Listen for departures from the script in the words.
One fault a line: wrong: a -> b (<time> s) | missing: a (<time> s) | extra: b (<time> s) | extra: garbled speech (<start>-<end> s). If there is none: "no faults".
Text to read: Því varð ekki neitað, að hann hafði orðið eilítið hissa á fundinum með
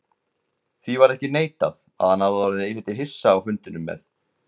no faults